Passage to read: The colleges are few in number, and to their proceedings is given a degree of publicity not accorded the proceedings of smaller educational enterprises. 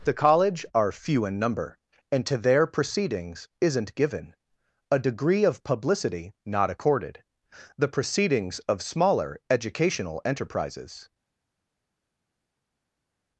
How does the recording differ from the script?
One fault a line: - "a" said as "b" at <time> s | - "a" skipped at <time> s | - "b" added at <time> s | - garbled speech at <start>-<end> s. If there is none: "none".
- "colleges" said as "college" at 0.1 s
- "is" said as "isn't" at 3.6 s